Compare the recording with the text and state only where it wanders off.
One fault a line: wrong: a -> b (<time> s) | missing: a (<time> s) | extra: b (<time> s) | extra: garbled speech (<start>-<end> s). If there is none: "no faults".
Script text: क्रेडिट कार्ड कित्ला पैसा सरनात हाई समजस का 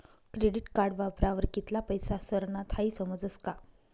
extra: वापरावर (1.0 s)